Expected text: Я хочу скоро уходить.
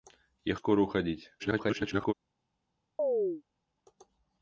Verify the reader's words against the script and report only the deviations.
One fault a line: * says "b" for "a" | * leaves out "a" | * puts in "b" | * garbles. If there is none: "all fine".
* leaves out "хочу"
* garbles